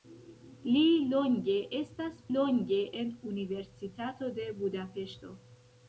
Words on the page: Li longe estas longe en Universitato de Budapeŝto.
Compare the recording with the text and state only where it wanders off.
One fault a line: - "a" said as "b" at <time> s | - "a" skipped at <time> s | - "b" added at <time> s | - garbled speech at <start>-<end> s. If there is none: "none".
none